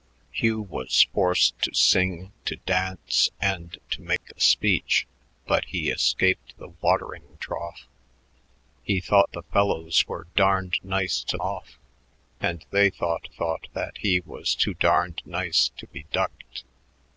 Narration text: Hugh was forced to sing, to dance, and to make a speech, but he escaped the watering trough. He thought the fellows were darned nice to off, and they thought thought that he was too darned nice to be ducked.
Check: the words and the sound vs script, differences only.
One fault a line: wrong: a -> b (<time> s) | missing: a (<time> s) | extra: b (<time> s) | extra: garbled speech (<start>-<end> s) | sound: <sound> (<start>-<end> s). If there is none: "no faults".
sound: dropout (4.2-4.2 s)